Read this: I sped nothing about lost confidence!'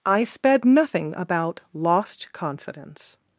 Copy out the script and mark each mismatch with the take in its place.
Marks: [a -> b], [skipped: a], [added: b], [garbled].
I sped nothing about lost confidence!'